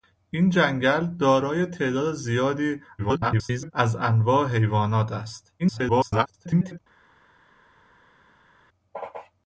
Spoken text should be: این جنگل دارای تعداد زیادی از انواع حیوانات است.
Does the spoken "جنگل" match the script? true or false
true